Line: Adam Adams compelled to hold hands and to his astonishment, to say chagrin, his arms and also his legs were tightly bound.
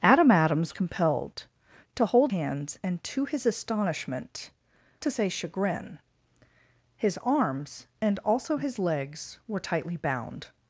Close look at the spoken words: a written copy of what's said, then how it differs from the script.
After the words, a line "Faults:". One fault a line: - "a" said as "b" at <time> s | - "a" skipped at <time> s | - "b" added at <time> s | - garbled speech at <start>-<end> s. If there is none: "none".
Adam Adams compelled to hold hands and to his astonishment, to say chagrin, his arms and also his legs were tightly bound.
Faults:
none